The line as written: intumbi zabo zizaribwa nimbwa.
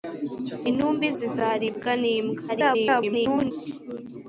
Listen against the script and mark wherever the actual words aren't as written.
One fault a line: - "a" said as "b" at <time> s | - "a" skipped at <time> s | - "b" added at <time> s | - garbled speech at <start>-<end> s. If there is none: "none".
- "zabo" skipped at 1.1 s
- garbled speech at 2.5-3.5 s